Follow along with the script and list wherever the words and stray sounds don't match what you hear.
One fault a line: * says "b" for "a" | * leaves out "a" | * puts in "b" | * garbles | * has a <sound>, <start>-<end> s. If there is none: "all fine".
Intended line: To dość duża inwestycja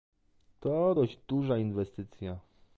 all fine